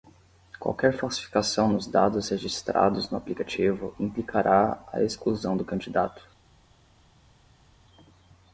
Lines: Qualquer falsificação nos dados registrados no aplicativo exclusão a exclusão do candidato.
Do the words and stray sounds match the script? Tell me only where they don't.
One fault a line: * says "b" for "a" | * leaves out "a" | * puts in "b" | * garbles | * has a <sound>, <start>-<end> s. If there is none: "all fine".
* says "implicará" for "exclusão"